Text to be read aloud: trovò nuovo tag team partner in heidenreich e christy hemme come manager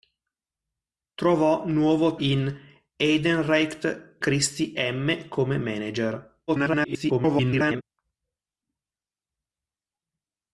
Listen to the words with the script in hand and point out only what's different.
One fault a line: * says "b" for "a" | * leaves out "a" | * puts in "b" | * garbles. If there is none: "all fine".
* leaves out "tag team partner"
* leaves out "e"
* garbles